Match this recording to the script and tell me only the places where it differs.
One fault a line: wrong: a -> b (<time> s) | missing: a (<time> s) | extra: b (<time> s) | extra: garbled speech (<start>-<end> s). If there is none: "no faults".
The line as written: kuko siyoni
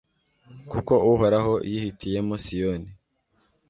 extra: uhoraho yihitiyemo (1.1 s)